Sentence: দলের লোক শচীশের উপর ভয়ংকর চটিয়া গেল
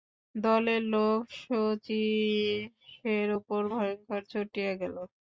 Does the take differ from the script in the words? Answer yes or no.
no